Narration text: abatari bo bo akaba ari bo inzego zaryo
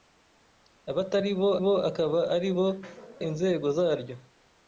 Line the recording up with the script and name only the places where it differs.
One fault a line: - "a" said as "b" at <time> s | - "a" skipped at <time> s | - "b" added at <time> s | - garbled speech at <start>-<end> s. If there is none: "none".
none